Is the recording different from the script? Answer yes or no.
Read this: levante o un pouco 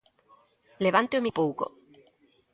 no